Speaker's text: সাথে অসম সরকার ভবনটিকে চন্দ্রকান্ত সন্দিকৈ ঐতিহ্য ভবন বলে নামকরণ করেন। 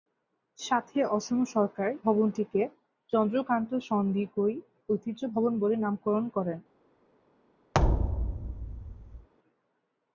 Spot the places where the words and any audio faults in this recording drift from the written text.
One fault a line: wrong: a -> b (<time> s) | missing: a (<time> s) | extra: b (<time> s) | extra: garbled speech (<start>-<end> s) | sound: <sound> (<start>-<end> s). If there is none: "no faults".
sound: thud (7.7-9.3 s)